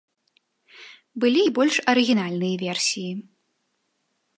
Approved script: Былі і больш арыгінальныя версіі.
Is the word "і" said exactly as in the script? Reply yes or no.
yes